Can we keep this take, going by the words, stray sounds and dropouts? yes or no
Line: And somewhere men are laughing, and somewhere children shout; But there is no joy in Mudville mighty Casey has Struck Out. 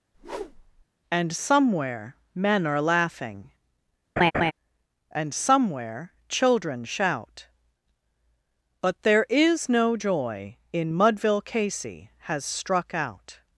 no